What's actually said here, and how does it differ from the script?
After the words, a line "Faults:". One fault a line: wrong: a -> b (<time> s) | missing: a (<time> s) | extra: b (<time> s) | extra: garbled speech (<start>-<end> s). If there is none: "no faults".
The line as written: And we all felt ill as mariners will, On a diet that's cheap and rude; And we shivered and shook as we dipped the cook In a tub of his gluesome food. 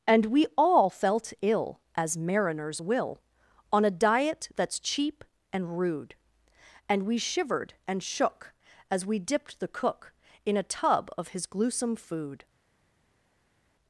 And we all felt ill as mariners will, On a diet that's cheap and rude; And we shivered and shook as we dipped the cook In a tub of his gluesome food.
Faults:
no faults